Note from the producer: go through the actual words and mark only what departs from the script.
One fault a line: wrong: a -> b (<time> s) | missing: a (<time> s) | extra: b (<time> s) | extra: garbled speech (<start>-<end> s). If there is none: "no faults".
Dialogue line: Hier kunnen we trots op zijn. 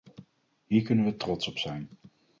no faults